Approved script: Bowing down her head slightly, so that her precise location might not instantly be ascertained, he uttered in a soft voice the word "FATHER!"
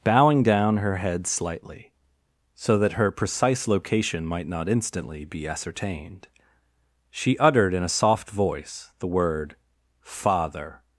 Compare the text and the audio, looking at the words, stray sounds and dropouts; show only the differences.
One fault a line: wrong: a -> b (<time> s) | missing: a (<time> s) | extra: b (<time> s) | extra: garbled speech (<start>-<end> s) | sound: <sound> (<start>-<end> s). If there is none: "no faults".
wrong: he -> she (7.1 s)